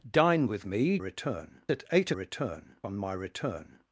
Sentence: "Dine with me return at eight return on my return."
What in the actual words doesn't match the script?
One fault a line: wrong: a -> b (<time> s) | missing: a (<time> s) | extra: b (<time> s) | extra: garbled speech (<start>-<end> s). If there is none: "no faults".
no faults